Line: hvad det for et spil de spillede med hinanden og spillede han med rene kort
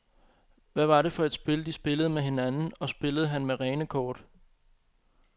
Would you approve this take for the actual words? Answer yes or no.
no